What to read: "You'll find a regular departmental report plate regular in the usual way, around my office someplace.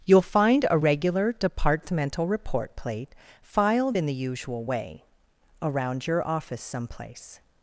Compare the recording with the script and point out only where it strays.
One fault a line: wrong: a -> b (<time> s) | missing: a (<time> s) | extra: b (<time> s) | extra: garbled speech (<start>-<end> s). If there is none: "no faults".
wrong: regular -> filed (3.4 s)
wrong: my -> your (6.1 s)